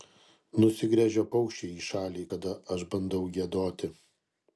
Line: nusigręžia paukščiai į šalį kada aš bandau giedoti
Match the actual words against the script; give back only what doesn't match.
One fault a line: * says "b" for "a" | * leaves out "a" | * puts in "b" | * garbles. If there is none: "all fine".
all fine